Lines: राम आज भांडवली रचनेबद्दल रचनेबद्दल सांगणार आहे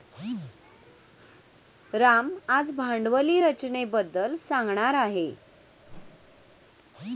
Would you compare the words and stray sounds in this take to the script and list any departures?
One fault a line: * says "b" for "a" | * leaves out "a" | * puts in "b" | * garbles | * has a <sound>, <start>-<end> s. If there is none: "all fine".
* leaves out "रचनेबद्दल"
* has a whoosh, 5.8-6.6 s